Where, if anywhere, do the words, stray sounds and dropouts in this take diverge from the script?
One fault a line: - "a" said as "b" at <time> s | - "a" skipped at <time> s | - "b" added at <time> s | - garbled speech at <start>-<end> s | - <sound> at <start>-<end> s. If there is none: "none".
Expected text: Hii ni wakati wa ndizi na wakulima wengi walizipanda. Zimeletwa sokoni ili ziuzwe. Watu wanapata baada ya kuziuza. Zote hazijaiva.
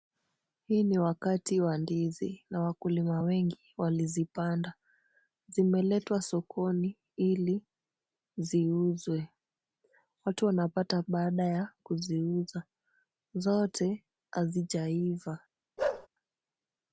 - bark at 15.8-16.1 s